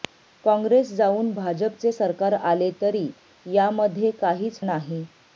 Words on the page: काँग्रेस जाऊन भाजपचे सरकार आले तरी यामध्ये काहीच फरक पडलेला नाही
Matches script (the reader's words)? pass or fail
fail